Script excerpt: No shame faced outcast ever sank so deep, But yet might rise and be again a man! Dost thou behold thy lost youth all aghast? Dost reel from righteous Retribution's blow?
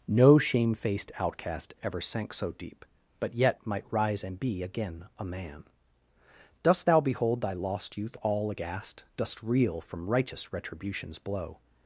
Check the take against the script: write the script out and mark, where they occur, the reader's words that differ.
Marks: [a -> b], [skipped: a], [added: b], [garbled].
No shame faced outcast ever sank so deep, But yet might rise and be again a man! Dost thou behold thy lost youth all aghast? Dost reel from righteous Retribution's blow?